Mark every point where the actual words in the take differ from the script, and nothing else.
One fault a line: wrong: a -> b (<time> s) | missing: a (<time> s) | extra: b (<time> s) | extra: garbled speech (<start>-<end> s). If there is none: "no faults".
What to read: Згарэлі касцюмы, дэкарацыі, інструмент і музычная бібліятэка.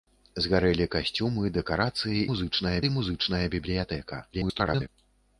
wrong: інструмент -> музычная (2.3 s)
extra: garbled speech (4.3-4.9 s)